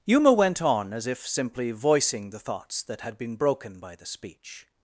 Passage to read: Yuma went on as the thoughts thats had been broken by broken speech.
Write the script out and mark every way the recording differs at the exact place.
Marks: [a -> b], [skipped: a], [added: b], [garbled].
Yuma went on as [added: if simply voicing] the thoughts [thats -> that] had been broken by [broken -> the] speech.